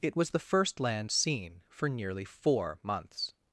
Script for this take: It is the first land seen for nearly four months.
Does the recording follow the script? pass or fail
fail